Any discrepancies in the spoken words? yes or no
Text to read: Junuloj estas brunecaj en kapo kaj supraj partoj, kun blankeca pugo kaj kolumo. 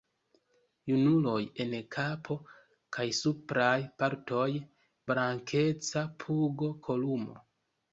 yes